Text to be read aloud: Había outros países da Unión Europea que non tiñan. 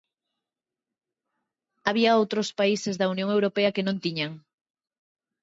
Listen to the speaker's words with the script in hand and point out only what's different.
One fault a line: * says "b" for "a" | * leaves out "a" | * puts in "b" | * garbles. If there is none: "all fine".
all fine